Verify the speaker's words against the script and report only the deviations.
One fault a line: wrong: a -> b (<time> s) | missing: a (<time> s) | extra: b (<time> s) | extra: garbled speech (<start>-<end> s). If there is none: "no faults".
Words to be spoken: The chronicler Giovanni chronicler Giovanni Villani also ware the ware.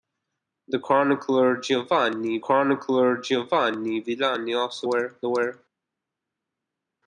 no faults